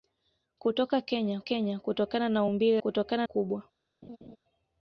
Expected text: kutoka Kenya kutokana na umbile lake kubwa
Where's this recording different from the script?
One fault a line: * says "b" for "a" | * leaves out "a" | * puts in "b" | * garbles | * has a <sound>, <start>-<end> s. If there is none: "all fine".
* puts in "Kenya"
* says "kutokana" for "lake"
* has a laugh, 4.0-4.4 s